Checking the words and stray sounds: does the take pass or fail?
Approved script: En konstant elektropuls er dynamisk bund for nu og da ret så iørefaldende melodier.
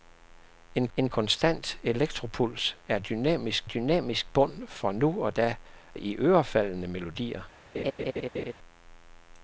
fail